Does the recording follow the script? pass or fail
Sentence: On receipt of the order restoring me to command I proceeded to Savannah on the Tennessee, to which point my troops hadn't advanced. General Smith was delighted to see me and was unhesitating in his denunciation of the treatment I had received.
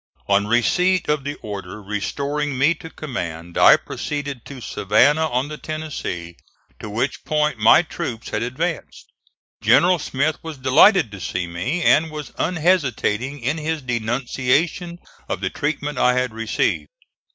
fail